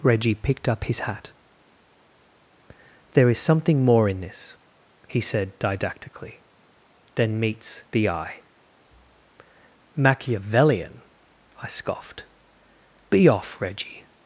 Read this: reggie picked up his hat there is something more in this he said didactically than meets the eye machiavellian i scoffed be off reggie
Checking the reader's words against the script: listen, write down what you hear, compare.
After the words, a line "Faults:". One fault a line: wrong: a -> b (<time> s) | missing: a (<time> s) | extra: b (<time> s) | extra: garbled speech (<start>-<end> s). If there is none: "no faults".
reggie picked up his hat there is something more in this he said didactically than meets the eye machiavellian i scoffed be off reggie
Faults:
no faults